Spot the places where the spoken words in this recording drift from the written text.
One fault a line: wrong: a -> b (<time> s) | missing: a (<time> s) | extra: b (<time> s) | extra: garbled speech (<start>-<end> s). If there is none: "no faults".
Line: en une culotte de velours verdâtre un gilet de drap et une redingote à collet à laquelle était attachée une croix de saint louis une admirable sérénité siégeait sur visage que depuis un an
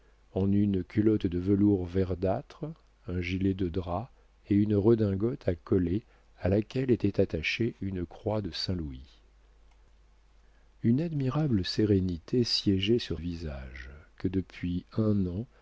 no faults